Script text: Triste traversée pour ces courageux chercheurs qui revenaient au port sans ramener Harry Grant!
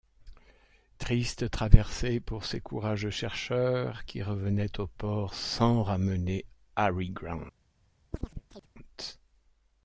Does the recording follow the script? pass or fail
pass